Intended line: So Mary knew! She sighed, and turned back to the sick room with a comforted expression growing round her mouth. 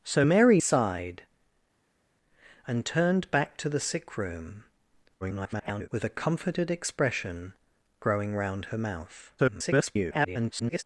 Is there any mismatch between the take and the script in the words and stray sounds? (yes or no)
yes